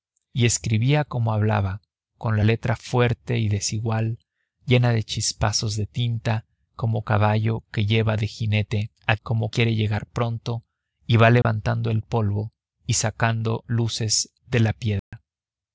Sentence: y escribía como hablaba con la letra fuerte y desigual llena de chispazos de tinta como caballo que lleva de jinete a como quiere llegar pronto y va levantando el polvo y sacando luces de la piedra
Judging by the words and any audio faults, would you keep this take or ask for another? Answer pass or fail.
fail